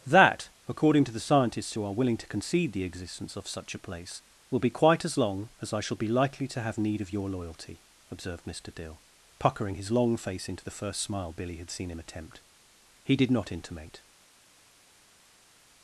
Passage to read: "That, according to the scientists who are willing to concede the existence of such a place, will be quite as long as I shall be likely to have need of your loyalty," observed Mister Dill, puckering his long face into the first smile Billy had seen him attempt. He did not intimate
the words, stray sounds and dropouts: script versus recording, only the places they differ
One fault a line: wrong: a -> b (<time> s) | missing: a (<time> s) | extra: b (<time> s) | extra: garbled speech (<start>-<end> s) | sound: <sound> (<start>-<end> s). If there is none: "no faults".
no faults